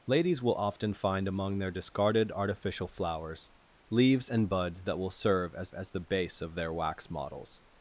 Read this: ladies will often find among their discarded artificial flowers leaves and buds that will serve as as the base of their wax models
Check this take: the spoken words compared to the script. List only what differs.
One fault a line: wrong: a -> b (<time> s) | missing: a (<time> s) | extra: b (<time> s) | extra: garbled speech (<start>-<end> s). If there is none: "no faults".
no faults